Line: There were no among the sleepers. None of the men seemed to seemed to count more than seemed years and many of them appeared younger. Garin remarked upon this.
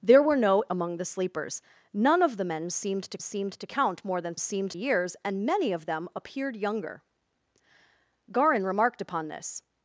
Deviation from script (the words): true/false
false